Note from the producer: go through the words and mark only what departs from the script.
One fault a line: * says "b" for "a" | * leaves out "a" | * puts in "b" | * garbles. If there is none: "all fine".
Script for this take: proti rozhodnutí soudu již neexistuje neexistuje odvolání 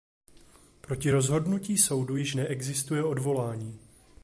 * leaves out "neexistuje"